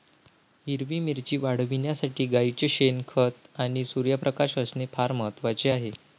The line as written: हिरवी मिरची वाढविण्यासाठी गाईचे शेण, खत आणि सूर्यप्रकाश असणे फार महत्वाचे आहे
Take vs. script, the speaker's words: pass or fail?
pass